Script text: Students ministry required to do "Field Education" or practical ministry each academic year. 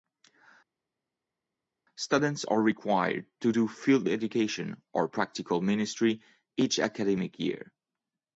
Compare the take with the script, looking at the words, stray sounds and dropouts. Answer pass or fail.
fail